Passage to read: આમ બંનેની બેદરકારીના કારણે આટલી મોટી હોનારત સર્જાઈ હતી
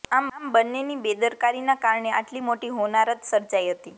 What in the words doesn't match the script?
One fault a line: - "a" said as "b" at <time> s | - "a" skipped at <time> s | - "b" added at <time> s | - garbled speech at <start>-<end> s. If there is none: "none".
none